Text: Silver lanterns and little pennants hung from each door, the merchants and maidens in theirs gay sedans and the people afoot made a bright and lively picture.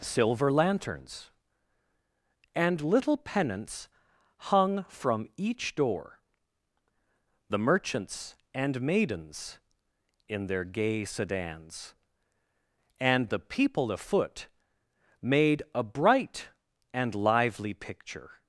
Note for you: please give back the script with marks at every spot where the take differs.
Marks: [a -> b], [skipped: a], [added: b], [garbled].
Silver lanterns and little pennants hung from each door, the merchants and maidens in [theirs -> their] gay sedans and the people afoot made a bright and lively picture.